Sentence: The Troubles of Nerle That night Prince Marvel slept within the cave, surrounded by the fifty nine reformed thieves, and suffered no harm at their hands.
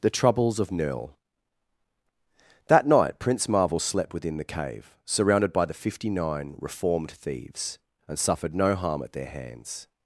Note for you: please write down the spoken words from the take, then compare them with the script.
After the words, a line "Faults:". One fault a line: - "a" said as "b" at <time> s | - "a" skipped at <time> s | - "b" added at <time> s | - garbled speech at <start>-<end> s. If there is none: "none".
The Troubles of Nerle That night Prince Marvel slept within the cave, surrounded by the fifty nine reformed thieves, and suffered no harm at their hands.
Faults:
none